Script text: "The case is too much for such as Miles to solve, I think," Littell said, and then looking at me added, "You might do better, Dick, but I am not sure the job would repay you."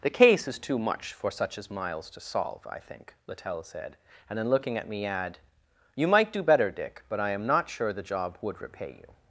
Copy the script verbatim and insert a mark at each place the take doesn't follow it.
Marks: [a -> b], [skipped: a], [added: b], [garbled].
"The case is too much for such as Miles to solve, I think," Littell said, and then looking at me [added, -> add] "You might do better, Dick, but I am not sure the job would repay you."